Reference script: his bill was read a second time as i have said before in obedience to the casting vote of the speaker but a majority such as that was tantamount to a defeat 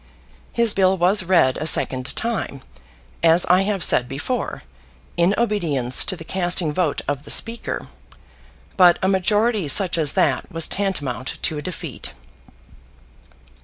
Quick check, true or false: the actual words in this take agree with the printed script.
true